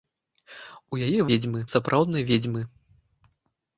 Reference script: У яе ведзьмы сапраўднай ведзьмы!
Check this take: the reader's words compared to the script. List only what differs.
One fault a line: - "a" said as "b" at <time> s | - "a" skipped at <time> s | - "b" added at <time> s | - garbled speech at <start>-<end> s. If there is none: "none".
none